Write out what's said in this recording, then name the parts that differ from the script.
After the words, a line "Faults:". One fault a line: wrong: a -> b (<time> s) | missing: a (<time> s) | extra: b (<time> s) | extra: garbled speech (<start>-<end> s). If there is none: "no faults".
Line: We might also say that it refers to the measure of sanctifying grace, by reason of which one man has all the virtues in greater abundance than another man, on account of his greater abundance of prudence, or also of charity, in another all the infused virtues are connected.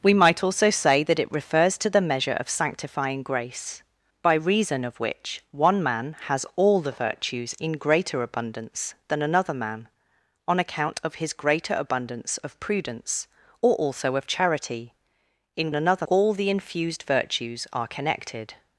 We might also say that it refers to the measure of sanctifying grace, by reason of which one man has all the virtues in greater abundance than another man, on account of his greater abundance of prudence, or also of charity, in another all the infused virtues are connected.
Faults:
no faults